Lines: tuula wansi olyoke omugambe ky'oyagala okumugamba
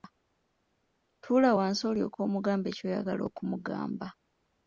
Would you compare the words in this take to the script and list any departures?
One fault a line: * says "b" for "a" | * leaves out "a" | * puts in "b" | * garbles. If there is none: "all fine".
all fine